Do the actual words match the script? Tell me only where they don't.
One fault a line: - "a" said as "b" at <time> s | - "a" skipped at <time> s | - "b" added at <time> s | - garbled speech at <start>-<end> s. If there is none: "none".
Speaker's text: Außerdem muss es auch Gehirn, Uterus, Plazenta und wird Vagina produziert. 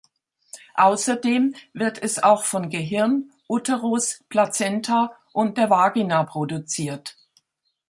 - "muss" said as "wird" at 1.7 s
- "von" added at 2.4 s
- "wird" said as "der" at 5.6 s